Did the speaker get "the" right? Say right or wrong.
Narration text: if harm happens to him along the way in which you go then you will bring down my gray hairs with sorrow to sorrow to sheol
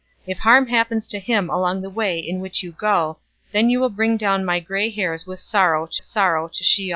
right